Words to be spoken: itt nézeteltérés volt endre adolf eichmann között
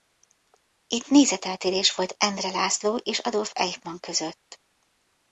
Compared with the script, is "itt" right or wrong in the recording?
right